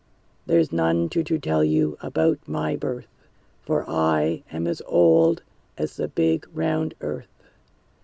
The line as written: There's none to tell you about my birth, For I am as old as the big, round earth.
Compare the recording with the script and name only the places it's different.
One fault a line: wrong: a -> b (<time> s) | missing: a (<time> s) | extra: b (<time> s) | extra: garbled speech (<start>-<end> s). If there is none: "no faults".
extra: to (1.2 s)